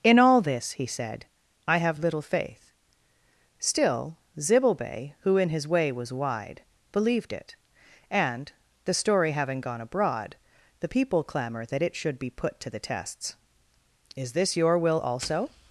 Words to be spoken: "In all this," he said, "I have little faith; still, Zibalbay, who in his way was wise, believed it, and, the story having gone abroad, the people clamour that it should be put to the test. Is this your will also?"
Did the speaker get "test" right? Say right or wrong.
wrong